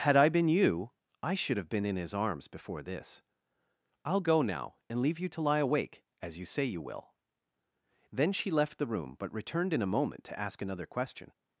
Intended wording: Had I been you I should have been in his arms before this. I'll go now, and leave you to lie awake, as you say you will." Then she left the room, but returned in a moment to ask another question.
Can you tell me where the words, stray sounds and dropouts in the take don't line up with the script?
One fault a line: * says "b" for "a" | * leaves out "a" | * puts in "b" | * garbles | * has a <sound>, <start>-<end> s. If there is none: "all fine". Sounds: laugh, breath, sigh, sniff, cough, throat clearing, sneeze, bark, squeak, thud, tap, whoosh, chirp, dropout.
all fine